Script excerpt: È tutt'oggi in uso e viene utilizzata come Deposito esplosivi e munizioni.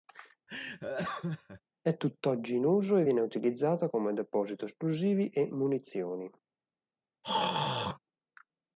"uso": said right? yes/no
yes